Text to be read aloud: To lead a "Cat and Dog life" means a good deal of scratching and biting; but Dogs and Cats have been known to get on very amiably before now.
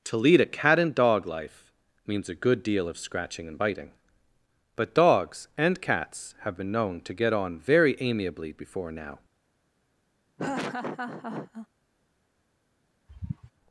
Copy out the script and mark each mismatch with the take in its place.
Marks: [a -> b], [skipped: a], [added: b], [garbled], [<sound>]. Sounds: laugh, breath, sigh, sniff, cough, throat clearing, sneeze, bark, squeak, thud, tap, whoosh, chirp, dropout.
To lead a "Cat and Dog life" means a good deal of scratching and biting; but Dogs and Cats have been known to get on very amiably before now. [laugh] [sigh]